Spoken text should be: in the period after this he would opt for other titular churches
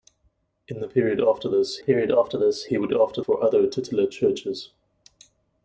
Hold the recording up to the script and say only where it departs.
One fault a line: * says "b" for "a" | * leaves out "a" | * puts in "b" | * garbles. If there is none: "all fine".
* puts in "period after this"
* says "after" for "opt"